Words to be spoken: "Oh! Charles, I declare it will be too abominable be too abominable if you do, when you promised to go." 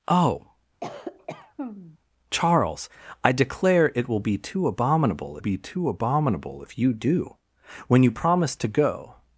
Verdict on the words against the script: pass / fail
pass